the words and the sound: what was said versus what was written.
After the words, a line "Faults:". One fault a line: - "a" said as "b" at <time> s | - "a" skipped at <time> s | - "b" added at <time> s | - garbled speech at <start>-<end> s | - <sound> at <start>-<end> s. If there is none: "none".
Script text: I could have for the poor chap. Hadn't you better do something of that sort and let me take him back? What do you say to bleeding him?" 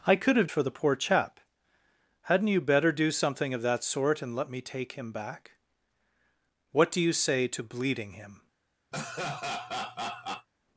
I could have for the poor chap. Hadn't you better do something of that sort and let me take him back? What do you say to bleeding him?"
Faults:
- laugh at 8.9-10.5 s